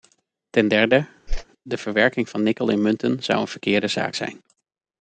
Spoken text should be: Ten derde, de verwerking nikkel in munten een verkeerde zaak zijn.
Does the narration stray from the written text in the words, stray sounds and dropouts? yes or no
yes